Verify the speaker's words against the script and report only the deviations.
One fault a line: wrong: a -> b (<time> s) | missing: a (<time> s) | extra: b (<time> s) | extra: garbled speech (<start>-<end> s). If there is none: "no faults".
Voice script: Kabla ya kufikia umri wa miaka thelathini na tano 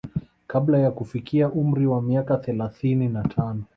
no faults